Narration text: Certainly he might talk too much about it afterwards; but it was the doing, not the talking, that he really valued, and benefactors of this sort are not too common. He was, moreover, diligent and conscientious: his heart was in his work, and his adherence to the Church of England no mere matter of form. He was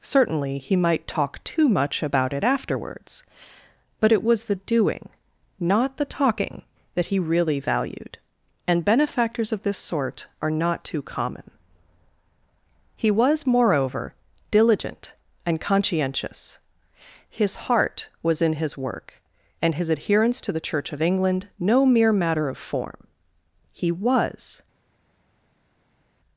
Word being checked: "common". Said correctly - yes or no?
yes